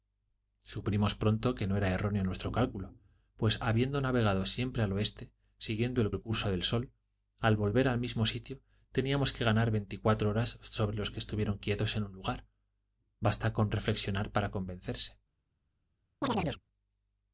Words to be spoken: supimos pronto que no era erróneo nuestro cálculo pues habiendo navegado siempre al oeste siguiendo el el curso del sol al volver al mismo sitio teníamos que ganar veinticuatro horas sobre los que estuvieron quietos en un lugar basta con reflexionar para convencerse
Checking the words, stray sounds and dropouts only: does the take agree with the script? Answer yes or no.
no